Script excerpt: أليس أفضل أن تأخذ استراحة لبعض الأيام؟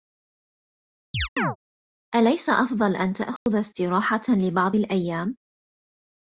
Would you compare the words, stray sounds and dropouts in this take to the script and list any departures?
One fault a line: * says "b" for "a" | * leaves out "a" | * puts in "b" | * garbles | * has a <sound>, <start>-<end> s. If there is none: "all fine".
* has a chirp, 1.1-1.6 s
* has a dropout, 3.4-3.5 s